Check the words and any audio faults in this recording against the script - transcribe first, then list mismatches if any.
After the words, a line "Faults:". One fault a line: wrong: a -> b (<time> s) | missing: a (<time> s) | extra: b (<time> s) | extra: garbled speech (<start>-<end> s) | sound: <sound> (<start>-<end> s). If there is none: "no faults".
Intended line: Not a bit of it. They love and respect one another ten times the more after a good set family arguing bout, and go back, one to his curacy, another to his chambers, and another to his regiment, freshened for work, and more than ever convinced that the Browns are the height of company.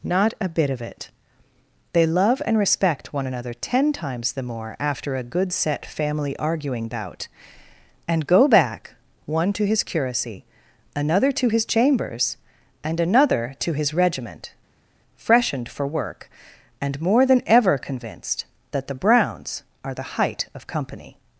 Not a bit of it. They love and respect one another ten times the more after a good set family arguing bout, and go back, one to his curacy, another to his chambers, and another to his regiment, freshened for work, and more than ever convinced that the Browns are the height of company.
Faults:
no faults